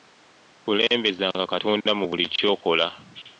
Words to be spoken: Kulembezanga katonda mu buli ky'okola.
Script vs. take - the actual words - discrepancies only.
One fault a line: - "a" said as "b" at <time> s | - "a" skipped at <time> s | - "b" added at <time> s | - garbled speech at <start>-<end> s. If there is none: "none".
none